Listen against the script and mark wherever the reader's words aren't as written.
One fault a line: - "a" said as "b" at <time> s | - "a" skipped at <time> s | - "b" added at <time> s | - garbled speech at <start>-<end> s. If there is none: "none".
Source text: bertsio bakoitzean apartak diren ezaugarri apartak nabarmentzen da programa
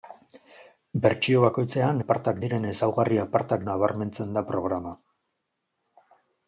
none